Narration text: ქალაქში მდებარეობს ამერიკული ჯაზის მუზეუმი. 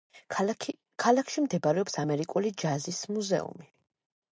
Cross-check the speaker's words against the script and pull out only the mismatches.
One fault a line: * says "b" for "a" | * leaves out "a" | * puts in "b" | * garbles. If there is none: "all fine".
all fine